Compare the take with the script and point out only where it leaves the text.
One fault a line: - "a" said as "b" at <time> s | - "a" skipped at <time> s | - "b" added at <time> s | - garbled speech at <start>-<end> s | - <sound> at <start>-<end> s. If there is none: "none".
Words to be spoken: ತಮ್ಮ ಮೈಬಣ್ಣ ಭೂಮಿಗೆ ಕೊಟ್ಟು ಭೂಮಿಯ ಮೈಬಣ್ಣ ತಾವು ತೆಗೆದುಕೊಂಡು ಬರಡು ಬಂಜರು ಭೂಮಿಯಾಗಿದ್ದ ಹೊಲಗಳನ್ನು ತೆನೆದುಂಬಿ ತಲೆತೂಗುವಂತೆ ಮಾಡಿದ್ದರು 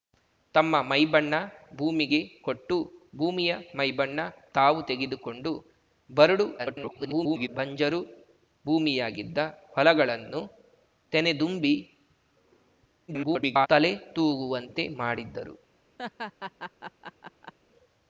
- garbled speech at 6.6-7.5 s
- garbled speech at 13.1-13.7 s
- laugh at 16.0-17.5 s